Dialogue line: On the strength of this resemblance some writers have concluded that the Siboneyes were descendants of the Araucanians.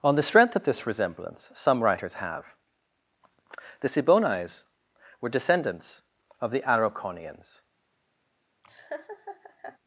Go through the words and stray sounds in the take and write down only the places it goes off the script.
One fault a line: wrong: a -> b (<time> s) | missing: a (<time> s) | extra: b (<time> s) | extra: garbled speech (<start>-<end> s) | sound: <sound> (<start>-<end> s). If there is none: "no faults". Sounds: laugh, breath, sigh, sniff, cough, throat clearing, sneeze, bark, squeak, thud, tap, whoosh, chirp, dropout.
missing: concluded that (2.5 s)
sound: laugh (8.6-9.8 s)